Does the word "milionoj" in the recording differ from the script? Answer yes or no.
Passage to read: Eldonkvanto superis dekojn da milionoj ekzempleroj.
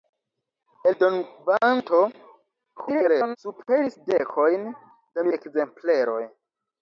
yes